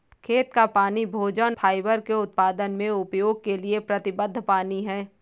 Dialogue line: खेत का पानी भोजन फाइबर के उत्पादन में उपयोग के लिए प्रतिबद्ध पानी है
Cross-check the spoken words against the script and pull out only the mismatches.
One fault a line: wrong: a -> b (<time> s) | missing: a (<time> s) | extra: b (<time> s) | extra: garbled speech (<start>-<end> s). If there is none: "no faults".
no faults